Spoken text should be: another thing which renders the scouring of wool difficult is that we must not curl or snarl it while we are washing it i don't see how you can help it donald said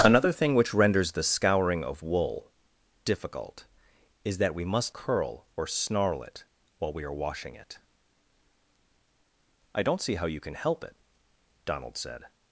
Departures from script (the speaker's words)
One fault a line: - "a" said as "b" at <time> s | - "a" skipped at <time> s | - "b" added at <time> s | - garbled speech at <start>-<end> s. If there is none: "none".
- "not" skipped at 5.0 s